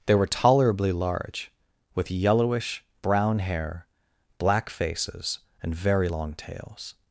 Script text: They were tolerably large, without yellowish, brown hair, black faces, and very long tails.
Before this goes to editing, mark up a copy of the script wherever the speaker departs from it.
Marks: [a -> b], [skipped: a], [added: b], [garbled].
They were tolerably large, [without -> with] yellowish, brown hair, black faces, and very long tails.